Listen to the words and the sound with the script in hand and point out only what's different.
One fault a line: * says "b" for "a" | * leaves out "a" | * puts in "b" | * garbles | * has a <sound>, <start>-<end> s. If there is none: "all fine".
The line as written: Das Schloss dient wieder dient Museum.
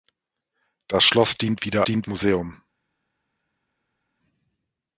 all fine